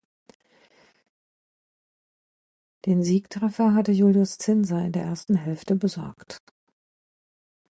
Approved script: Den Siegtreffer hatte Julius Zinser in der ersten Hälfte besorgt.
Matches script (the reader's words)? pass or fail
pass